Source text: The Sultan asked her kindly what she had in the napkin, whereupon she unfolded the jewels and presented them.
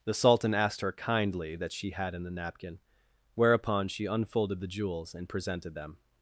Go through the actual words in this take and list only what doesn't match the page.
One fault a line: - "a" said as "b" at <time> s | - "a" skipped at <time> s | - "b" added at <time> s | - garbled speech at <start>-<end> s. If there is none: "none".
- "what" said as "that" at 1.6 s